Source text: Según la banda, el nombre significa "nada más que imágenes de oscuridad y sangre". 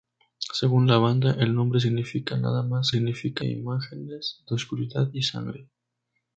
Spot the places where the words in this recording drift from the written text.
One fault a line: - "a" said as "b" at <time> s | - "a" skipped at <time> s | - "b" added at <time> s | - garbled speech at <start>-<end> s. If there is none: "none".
- "que" said as "significa" at 2.9 s